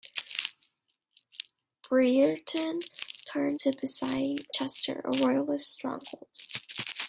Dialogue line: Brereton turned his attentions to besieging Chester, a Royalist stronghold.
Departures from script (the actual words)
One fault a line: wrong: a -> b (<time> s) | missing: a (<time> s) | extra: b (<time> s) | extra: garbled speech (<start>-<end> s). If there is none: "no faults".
missing: his attentions (3.6 s)